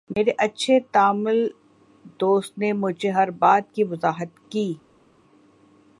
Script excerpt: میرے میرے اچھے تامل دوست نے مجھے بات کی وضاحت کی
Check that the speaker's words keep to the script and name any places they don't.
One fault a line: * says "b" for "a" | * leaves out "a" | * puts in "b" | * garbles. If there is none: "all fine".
* leaves out "میرے"
* puts in "ہر"